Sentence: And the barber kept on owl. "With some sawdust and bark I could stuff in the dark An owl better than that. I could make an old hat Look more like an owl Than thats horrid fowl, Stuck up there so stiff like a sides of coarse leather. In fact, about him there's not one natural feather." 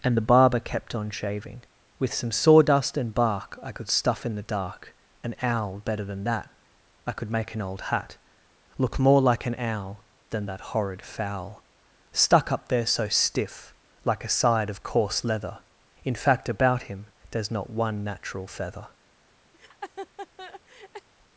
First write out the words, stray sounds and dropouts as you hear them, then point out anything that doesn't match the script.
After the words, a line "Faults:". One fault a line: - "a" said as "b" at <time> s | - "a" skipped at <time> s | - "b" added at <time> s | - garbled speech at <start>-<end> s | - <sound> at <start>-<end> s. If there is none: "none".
And the barber kept on shaving. "With some sawdust and bark I could stuff in the dark An owl better than that. I could make an old hat Look more like an owl Than that horrid fowl, Stuck up there so stiff like a side of coarse leather. In fact, about him there's not one natural feather."
Faults:
- "owl" said as "shaving" at 1.1 s
- "thats" said as "that" at 10.4 s
- "sides" said as "side" at 14.3 s
- laugh at 19.5-21.1 s